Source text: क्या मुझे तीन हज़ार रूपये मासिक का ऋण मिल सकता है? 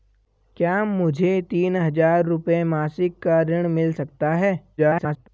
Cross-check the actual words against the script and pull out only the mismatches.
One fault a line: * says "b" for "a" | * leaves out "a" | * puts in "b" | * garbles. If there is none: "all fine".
* garbles